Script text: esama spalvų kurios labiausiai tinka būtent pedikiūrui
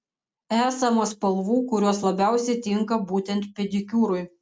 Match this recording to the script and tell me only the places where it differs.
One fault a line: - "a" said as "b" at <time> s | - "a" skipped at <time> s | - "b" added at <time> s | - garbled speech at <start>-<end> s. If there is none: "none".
none